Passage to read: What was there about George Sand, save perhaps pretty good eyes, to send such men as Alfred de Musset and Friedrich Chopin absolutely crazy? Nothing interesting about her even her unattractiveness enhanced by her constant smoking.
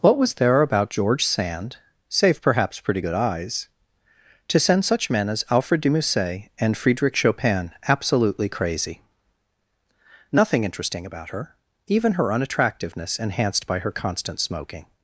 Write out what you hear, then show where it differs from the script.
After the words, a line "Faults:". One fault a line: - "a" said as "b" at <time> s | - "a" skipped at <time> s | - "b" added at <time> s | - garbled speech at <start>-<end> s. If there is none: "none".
What was there about George Sand, save perhaps pretty good eyes, to send such men as Alfred de Musset and Friedrich Chopin absolutely crazy? Nothing interesting about her even her unattractiveness enhanced by her constant smoking.
Faults:
none